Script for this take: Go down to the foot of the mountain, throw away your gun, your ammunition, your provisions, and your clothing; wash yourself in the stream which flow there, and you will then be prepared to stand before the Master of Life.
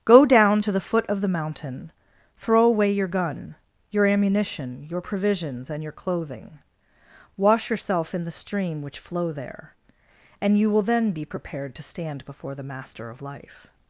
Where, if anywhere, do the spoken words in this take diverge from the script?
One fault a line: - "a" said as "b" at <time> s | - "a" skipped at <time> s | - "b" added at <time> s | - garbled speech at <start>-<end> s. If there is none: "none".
none